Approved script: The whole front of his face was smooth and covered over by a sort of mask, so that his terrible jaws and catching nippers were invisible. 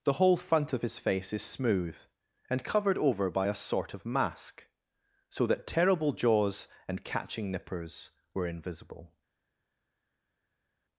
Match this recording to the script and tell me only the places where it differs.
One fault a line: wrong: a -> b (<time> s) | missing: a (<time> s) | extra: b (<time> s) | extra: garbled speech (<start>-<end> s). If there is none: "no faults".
wrong: was -> is (1.3 s)
missing: his (5.7 s)